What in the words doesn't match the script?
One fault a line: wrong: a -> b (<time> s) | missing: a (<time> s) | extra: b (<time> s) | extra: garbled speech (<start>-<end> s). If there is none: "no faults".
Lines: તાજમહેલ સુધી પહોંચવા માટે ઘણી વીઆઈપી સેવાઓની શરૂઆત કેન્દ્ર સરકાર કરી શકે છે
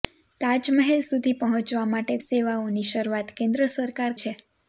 missing: ઘણી વીઆઈપી (2.1 s)
missing: કરી શકે (4.2 s)